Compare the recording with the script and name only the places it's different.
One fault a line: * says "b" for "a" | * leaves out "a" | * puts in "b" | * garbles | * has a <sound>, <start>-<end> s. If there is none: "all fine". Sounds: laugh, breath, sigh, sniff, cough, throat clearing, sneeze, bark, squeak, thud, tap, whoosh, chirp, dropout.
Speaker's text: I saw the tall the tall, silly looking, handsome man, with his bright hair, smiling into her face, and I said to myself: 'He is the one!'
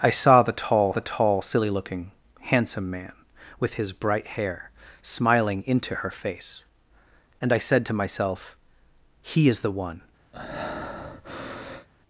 * has a breath, 10.3-11.9 s